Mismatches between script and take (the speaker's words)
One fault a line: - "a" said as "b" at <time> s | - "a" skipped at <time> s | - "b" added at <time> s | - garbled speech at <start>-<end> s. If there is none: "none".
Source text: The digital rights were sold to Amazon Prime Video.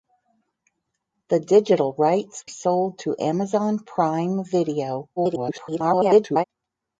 - "were" skipped at 2.4 s
- garbled speech at 5.2-6.4 s